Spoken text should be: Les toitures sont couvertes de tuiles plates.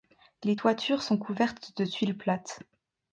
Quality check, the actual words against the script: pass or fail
pass